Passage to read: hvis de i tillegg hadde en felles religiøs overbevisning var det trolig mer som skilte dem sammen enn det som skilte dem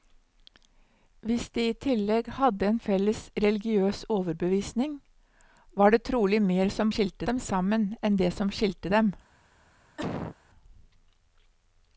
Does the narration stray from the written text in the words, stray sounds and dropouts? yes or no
yes